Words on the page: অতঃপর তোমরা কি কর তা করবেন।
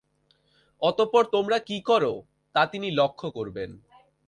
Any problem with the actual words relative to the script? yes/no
yes